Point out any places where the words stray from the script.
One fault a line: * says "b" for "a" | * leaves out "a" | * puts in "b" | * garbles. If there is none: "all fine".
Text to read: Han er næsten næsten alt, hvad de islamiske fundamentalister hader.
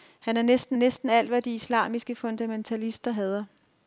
all fine